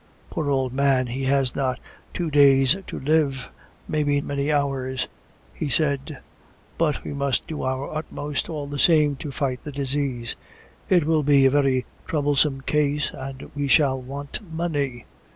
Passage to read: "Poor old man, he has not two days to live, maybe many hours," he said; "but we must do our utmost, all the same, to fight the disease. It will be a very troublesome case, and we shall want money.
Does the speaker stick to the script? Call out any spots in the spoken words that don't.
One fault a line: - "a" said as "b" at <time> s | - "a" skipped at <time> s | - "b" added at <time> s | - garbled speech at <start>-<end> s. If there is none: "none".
none